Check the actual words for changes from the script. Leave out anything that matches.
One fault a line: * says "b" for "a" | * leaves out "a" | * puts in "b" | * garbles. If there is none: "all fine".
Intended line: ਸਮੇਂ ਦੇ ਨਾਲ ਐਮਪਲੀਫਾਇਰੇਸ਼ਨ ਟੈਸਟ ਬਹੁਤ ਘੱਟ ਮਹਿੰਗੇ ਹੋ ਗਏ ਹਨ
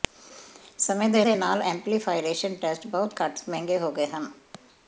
* puts in "ਦੇ"